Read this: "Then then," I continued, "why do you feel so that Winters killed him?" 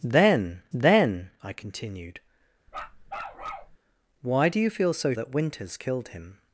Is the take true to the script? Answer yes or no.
yes